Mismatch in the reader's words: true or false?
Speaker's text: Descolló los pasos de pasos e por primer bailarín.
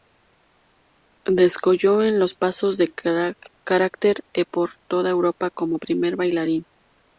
true